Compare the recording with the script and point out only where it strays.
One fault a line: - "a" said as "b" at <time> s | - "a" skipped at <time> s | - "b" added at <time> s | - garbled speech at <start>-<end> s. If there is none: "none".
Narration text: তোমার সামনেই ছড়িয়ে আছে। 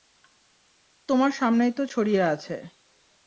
- "তো" added at 1.7 s